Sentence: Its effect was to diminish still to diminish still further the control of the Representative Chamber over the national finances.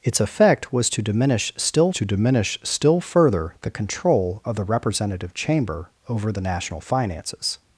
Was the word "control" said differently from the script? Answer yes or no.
no